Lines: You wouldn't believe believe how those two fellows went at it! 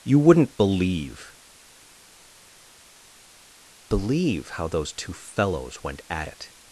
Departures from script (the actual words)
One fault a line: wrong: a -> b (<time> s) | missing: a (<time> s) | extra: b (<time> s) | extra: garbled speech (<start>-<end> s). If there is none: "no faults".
no faults